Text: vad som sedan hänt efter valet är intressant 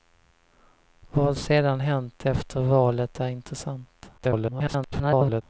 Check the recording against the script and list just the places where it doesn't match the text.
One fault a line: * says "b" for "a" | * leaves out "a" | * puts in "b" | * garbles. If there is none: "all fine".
* leaves out "som"
* garbles